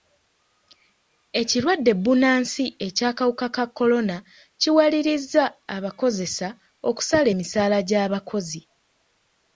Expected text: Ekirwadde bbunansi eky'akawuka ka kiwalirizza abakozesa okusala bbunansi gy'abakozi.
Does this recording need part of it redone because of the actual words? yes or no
yes